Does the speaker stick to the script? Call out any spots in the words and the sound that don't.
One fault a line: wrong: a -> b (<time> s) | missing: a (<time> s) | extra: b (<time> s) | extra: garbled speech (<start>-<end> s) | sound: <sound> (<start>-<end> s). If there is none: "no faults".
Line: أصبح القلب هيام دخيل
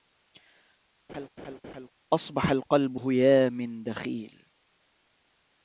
sound: laugh (1.1-1.9 s)